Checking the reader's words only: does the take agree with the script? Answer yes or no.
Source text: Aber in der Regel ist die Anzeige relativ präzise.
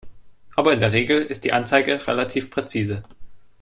yes